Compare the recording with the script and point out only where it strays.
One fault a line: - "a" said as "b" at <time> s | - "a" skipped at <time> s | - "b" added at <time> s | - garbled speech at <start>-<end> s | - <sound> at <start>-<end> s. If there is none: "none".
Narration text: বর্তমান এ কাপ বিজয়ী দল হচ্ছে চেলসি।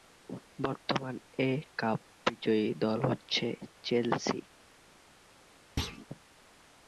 - thud at 5.8-6.1 s